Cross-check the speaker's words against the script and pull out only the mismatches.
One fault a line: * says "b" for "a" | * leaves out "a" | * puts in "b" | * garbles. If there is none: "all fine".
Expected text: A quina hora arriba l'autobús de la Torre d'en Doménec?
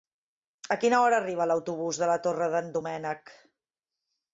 all fine